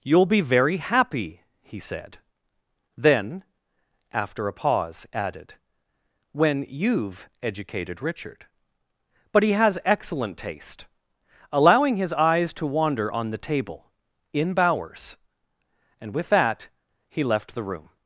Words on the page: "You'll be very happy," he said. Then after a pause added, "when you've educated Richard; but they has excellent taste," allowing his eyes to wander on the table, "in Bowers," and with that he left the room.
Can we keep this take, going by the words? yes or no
no